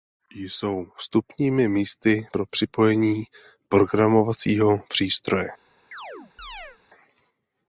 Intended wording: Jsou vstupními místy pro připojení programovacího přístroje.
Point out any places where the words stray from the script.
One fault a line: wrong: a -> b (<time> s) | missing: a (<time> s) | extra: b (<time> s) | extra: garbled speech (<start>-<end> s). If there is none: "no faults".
no faults